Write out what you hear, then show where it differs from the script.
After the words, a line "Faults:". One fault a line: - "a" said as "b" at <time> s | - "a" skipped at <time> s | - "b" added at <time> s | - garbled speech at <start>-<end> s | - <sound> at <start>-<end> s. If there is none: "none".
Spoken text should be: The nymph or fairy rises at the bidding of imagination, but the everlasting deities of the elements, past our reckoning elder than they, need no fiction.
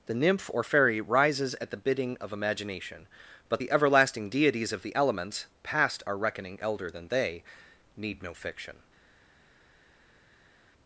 The nymph or fairy rises at the bidding of imagination, but the everlasting deities of the elements, past our reckoning elder than they, need no fiction.
Faults:
none